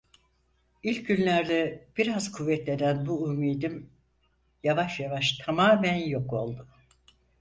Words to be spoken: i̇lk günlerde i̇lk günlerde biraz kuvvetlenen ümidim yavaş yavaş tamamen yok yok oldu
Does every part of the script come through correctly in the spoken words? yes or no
no